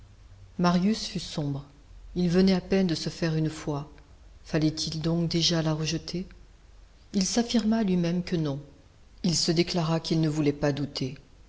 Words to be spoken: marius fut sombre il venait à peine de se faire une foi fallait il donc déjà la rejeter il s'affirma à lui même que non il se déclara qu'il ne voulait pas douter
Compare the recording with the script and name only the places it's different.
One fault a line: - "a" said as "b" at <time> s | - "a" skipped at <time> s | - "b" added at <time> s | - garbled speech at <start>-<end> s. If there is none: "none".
none